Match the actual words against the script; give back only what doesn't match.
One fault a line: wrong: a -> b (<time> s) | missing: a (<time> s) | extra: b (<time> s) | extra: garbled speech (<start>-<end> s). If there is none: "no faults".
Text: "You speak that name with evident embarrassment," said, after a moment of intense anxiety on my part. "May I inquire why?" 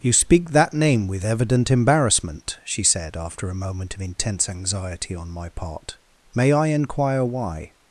extra: she (2.6 s)